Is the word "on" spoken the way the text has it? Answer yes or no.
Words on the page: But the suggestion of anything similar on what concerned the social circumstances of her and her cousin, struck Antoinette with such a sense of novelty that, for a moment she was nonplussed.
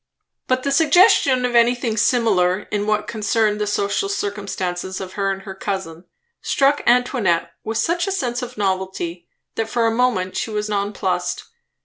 no